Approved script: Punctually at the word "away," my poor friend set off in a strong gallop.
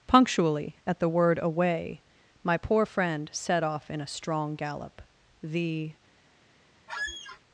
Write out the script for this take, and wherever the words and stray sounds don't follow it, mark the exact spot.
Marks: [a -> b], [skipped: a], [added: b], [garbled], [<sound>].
Punctually at the word "away," my poor friend set off in a strong gallop. [added: The] [squeak]